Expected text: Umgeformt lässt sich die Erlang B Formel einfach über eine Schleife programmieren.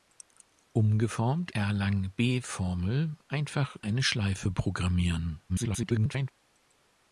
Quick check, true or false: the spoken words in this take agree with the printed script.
false